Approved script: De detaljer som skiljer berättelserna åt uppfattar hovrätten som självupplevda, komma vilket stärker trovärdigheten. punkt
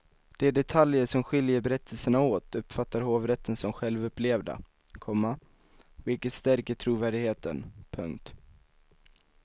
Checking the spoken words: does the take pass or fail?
pass